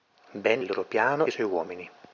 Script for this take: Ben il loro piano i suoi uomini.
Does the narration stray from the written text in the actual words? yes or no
no